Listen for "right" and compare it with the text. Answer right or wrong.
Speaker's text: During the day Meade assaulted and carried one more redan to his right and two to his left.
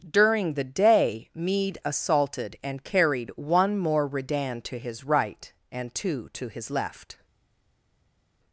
right